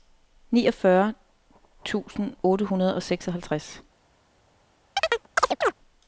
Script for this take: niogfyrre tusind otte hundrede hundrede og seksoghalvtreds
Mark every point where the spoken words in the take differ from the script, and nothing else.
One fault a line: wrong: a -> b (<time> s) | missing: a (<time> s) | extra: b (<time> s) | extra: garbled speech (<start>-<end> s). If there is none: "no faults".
missing: hundrede (3.0 s)